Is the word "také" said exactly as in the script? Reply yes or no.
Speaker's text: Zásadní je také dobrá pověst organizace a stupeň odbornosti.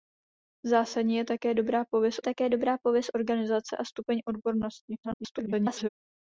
yes